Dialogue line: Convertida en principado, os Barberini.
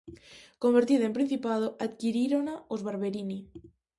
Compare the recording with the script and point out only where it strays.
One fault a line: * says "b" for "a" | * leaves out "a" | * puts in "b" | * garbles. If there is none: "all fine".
* puts in "adquirírona"